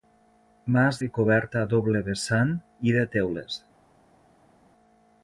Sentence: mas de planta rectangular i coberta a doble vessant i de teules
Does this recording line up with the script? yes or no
no